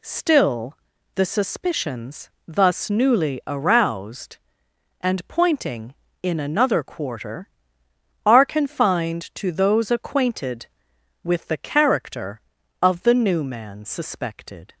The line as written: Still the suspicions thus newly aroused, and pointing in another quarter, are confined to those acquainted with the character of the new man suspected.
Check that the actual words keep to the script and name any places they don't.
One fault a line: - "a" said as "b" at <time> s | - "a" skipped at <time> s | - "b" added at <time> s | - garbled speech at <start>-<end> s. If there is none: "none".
none